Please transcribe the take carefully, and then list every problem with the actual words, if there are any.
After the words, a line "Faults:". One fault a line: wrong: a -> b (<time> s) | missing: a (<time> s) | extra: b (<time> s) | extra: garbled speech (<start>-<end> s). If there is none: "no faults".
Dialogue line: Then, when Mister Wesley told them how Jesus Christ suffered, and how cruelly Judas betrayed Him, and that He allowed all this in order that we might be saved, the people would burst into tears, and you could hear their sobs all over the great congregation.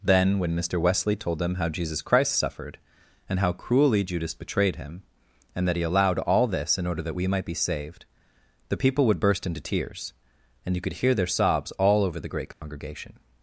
Then, when Mister Wesley told them how Jesus Christ suffered, and how cruelly Judas betrayed Him, and that He allowed all this in order that we might be saved, the people would burst into tears, and you could hear their sobs all over the great congregation.
Faults:
no faults